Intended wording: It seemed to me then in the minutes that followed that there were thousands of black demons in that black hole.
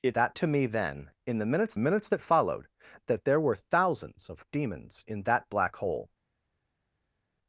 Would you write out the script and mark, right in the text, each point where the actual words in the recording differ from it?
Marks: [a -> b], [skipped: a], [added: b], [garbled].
It [seemed -> that] to me then in the minutes [added: minutes] that followed that there were thousands of [skipped: black] demons in that black hole.